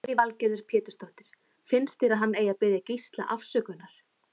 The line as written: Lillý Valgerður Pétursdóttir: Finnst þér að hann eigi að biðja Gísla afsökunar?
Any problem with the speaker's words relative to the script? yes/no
no